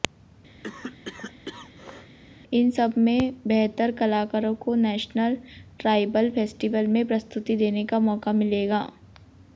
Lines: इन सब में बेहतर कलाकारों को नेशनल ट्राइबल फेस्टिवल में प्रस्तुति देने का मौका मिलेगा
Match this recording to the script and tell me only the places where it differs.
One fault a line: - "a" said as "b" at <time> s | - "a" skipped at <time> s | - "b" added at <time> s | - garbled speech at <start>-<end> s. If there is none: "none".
none